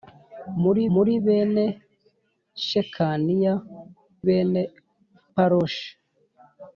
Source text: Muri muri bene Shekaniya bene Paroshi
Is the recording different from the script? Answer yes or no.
no